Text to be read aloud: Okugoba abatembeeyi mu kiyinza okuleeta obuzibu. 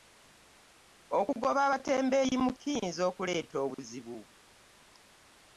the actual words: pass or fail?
pass